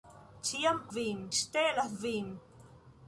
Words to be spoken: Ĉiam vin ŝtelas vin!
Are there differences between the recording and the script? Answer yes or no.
no